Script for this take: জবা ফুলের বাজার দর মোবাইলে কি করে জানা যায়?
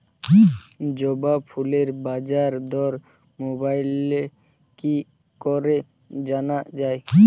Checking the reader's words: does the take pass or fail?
pass